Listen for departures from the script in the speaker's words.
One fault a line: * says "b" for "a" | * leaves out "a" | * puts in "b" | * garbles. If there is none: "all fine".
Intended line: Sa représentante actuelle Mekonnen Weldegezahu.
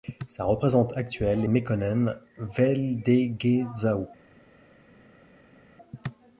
all fine